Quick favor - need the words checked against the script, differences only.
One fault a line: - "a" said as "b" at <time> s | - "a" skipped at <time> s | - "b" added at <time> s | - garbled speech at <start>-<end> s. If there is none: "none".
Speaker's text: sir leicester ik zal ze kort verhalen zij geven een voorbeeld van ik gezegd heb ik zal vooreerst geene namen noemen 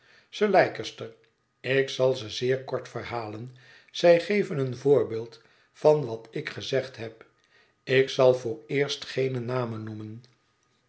- "zeer" added at 2.3 s
- "wat" added at 6.0 s